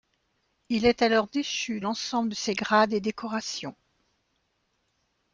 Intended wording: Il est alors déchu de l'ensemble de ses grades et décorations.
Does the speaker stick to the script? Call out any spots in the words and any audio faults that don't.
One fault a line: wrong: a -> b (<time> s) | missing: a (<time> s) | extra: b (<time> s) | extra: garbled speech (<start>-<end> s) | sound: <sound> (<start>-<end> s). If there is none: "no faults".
missing: de (1.8 s)